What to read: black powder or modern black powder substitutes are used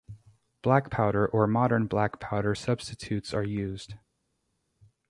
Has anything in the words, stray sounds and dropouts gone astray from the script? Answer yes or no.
no